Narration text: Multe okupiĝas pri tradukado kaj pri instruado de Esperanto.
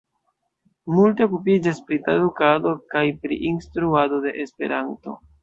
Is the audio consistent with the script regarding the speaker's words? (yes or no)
yes